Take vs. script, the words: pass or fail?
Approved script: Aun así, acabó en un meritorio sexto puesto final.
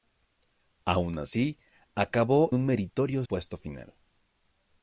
fail